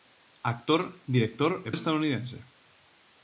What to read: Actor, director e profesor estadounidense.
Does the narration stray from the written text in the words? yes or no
yes